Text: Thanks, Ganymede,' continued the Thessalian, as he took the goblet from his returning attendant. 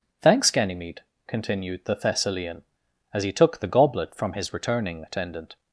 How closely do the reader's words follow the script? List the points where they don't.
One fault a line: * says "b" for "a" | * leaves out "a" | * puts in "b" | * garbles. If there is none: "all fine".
all fine